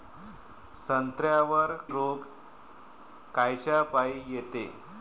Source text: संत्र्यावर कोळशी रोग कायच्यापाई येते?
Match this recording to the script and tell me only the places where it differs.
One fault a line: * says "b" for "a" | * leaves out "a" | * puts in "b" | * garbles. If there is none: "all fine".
* leaves out "कोळशी"